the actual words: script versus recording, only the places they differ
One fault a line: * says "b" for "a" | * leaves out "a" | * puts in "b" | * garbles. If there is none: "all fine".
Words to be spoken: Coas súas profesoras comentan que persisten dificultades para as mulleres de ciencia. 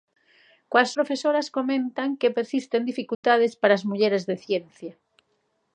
* leaves out "súas"